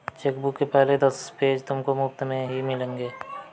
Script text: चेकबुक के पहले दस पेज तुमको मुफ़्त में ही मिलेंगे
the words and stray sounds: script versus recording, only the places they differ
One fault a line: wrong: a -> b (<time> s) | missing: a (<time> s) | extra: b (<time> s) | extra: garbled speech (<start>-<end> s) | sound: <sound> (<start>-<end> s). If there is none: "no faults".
no faults